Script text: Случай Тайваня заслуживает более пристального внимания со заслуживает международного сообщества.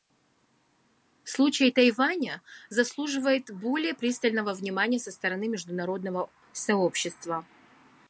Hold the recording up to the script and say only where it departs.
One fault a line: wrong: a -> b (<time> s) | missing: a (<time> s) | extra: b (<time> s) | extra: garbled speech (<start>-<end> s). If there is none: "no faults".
wrong: заслуживает -> стороны (5.1 s)